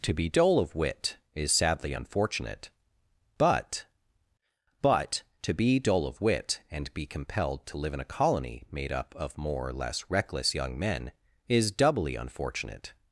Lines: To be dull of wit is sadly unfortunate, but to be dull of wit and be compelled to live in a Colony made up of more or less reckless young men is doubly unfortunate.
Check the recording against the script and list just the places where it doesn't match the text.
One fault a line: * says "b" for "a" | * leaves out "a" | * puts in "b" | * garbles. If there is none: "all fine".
* puts in "but"